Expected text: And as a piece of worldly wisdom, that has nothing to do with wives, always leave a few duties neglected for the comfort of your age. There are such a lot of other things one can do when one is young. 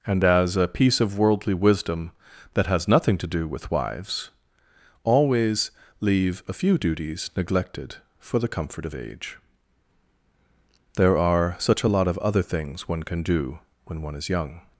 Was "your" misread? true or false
true